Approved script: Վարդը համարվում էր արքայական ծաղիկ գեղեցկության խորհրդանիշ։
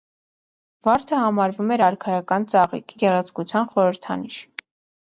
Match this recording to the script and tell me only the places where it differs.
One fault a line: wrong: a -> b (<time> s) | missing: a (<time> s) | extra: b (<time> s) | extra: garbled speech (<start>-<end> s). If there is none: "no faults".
no faults